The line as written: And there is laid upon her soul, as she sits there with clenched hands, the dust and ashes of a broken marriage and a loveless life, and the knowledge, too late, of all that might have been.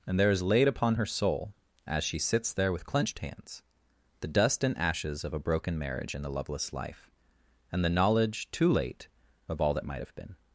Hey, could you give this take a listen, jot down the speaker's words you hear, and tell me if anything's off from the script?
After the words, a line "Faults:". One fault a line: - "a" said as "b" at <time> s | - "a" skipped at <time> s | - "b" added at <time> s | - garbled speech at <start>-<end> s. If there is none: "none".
And there is laid upon her soul, as she sits there with clenched hands, the dust and ashes of a broken marriage and a loveless life, and the knowledge, too late, of all that might have been.
Faults:
none